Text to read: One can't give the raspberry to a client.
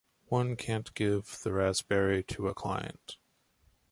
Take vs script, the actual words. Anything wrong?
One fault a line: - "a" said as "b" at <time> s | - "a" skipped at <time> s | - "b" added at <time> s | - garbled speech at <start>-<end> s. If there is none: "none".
none